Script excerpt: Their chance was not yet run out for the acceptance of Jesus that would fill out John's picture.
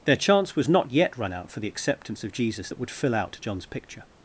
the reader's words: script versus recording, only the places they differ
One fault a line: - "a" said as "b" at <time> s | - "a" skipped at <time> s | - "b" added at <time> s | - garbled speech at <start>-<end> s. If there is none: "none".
none